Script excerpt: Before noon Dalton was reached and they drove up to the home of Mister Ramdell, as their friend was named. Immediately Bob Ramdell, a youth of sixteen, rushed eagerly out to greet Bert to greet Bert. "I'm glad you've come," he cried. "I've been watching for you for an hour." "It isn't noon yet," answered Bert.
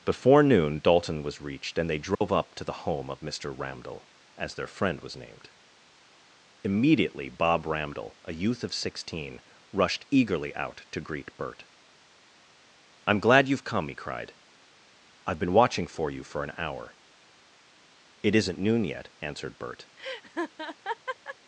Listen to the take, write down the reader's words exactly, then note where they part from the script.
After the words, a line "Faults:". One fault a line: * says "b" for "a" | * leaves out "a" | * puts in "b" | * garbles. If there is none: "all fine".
Before noon Dalton was reached and they drove up to the home of Mister Ramdell, as their friend was named. Immediately Bob Ramdell, a youth of sixteen, rushed eagerly out to greet Bert. "I'm glad you've come," he cried. "I've been watching for you for an hour." "It isn't noon yet," answered Bert.
Faults:
* leaves out "to greet Bert"